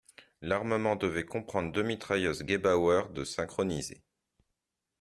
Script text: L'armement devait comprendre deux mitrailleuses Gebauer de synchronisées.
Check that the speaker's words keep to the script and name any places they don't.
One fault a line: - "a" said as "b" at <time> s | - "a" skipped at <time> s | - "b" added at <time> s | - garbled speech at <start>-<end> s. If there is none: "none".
none